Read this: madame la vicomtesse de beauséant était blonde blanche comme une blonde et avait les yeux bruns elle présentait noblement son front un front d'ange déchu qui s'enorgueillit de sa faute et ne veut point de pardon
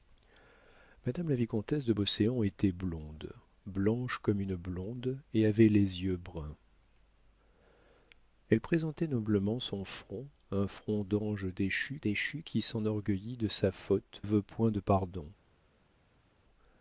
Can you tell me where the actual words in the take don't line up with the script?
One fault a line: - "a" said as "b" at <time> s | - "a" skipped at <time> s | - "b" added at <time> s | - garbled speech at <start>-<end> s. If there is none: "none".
- "déchu" added at 12.0 s
- "et ne" skipped at 14.2 s